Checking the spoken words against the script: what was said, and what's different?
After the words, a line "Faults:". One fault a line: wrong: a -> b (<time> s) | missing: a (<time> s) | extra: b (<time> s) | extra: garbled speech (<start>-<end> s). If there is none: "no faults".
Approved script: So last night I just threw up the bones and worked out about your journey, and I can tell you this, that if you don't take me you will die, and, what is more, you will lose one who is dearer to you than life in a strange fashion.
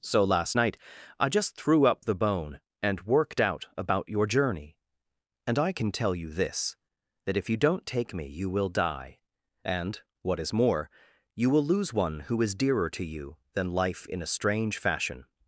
So last night I just threw up the bone and worked out about your journey, and I can tell you this, that if you don't take me you will die, and, what is more, you will lose one who is dearer to you than life in a strange fashion.
Faults:
wrong: bones -> bone (2.1 s)